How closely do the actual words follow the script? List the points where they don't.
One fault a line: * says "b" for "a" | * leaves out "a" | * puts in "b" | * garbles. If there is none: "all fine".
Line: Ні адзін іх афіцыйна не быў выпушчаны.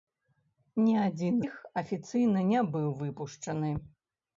all fine